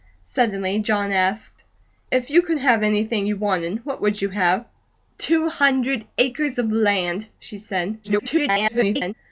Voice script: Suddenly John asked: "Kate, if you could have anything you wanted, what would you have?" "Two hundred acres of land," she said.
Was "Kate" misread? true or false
true